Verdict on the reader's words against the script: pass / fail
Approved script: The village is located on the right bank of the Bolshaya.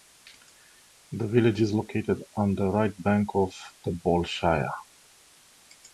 pass